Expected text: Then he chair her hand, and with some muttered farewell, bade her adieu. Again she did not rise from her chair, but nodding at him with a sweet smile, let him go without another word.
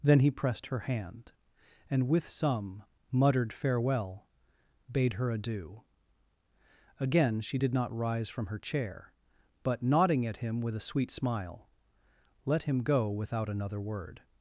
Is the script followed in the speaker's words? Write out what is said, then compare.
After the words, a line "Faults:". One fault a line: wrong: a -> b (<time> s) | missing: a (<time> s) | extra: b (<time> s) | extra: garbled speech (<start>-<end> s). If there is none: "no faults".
Then he pressed her hand, and with some muttered farewell, bade her adieu. Again she did not rise from her chair, but nodding at him with a sweet smile, let him go without another word.
Faults:
wrong: chair -> pressed (0.3 s)